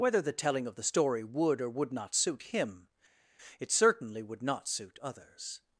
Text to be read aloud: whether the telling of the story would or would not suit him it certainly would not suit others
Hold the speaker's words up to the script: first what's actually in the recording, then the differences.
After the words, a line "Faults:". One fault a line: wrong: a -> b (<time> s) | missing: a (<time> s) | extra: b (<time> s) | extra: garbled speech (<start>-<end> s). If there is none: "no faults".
whether the telling of the story would or would not suit him it certainly would not suit others
Faults:
no faults